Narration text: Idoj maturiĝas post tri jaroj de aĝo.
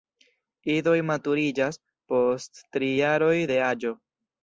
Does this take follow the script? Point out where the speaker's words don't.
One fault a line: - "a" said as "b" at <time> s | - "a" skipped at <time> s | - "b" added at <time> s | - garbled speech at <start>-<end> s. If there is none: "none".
none